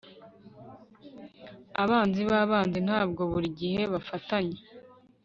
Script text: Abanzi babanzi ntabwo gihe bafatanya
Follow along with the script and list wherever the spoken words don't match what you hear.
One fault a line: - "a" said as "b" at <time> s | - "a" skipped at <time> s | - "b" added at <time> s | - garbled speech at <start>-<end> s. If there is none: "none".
- "buri" added at 3.3 s